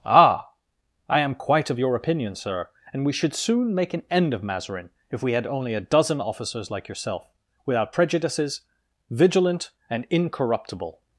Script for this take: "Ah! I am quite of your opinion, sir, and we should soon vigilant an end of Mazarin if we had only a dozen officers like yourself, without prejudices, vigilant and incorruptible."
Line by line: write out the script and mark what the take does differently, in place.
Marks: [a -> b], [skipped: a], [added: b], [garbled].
"Ah! I am quite of your opinion, sir, and we should soon [vigilant -> make] an end of Mazarin if we had only a dozen officers like yourself, without prejudices, vigilant and incorruptible."